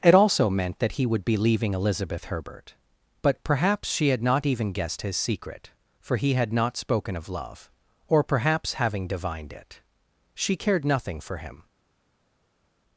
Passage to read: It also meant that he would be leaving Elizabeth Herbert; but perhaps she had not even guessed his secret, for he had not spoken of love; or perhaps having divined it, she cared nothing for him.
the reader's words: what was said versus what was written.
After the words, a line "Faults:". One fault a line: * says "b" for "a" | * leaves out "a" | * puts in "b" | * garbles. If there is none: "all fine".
It also meant that he would be leaving Elizabeth Herbert; but perhaps she had not even guessed his secret, for he had not spoken of love; or perhaps having divined it, she cared nothing for him.
Faults:
all fine